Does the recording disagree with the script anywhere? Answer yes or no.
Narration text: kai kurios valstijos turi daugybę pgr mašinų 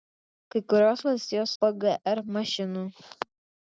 yes